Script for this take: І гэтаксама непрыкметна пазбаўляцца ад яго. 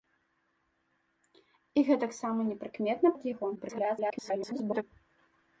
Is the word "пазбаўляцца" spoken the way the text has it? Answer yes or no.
no